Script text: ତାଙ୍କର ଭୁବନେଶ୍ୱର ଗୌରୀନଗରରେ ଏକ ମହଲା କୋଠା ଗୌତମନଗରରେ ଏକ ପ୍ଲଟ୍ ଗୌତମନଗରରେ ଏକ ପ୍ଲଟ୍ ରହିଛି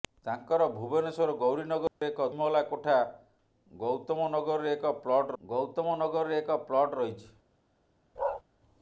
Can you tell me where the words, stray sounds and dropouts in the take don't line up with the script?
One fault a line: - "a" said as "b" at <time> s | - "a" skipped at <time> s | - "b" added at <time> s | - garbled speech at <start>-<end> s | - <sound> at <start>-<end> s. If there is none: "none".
- dropout at 1.9-2.0 s
- bark at 8.2-8.4 s